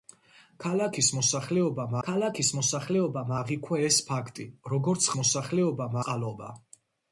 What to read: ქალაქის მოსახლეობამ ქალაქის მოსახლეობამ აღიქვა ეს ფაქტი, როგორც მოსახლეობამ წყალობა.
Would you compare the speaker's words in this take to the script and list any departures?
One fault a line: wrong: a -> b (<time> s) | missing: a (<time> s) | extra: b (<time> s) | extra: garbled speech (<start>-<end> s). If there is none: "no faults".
no faults